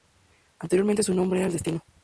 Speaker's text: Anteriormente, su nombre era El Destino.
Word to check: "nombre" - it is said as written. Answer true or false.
true